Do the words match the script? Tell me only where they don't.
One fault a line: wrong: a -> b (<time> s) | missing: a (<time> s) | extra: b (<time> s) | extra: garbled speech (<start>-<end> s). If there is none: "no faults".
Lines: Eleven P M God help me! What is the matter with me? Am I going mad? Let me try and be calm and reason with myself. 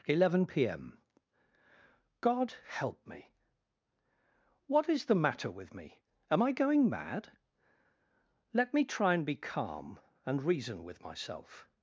no faults